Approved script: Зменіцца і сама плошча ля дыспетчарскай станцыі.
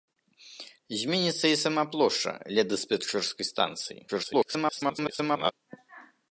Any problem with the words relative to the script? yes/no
yes